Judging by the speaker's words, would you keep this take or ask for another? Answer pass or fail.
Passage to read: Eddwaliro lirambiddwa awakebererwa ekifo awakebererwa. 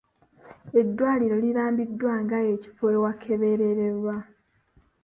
fail